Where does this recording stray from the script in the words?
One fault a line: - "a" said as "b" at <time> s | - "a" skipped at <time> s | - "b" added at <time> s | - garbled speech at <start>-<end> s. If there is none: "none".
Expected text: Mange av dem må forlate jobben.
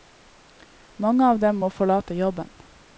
none